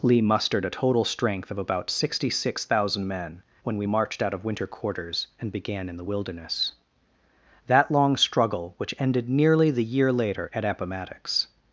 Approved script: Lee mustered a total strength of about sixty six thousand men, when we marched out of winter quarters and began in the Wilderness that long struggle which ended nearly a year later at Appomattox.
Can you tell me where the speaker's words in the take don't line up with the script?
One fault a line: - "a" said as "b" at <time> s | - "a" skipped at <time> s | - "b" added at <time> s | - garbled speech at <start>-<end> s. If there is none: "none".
- "a" said as "the" at 9.7 s